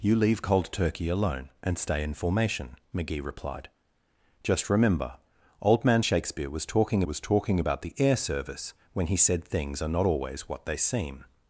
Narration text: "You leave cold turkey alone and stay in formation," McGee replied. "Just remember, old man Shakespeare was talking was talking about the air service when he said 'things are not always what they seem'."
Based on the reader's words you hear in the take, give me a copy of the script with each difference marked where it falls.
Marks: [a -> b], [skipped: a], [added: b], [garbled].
"You leave cold turkey alone and stay in formation," McGee replied. "Just remember, old man Shakespeare was talking was talking about the air service when he said 'things are not always what they seem'."